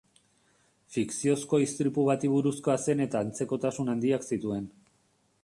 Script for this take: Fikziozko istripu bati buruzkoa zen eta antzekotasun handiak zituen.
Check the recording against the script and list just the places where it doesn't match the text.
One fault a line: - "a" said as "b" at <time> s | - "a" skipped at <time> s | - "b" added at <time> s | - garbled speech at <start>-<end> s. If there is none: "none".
none